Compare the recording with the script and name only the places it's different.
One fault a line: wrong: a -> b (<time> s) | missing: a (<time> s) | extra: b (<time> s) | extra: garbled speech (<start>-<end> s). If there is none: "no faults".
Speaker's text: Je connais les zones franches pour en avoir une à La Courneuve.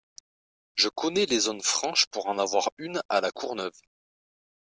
no faults